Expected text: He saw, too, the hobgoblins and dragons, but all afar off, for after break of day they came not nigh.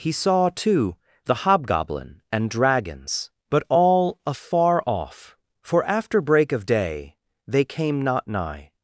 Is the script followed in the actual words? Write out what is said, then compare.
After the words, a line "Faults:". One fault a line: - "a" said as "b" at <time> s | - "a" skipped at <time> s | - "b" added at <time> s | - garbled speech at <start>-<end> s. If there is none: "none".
He saw, too, the hobgoblin and dragons, but all afar off, for after break of day they came not nigh.
Faults:
- "hobgoblins" said as "hobgoblin" at 1.4 s